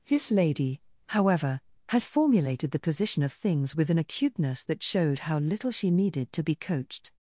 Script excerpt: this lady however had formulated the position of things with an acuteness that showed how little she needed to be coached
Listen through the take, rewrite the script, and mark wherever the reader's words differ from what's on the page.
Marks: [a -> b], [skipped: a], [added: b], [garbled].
this lady however had formulated the position of things with an acuteness that showed how little she needed to be coached